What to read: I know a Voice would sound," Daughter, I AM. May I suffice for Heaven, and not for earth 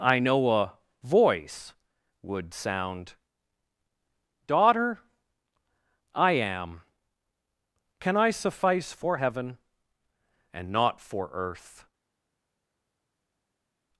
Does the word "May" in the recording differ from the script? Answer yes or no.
yes